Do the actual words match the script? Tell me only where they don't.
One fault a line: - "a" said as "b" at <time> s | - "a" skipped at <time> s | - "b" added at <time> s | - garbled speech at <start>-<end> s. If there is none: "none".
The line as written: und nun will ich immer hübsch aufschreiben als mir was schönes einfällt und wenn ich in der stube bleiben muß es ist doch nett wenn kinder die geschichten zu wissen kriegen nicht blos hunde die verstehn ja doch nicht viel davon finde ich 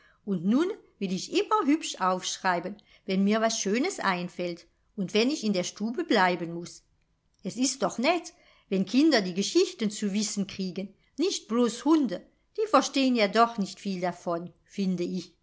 - "als" said as "wenn" at 3.0 s